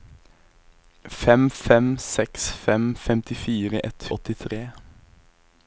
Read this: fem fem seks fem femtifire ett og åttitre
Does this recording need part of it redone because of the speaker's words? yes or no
no